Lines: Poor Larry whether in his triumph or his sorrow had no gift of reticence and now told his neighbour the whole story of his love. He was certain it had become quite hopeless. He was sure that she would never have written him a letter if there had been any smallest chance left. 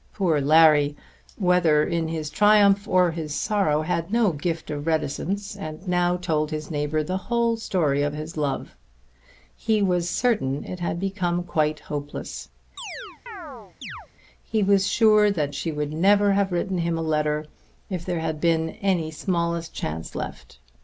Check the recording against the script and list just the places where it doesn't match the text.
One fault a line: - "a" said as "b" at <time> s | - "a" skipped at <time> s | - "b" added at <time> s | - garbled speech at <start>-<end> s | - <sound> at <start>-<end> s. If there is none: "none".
- chirp at 12.8-14.1 s